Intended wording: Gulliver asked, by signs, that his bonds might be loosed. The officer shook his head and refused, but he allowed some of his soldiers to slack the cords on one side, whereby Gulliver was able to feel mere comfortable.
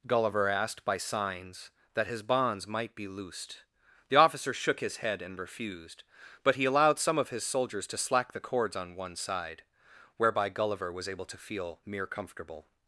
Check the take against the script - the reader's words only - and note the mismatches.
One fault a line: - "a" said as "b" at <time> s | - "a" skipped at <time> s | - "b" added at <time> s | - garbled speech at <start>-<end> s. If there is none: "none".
none